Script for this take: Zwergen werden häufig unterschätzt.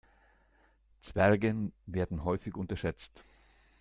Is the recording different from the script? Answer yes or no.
no